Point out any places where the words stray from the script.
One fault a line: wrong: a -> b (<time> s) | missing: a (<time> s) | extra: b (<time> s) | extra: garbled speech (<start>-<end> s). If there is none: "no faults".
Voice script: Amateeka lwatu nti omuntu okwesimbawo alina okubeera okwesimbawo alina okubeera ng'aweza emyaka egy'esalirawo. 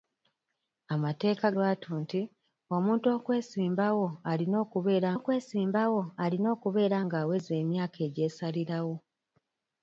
no faults